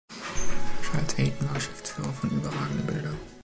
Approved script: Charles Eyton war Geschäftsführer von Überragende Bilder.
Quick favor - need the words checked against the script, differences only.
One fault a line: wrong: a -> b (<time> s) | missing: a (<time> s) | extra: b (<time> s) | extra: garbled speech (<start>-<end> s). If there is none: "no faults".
no faults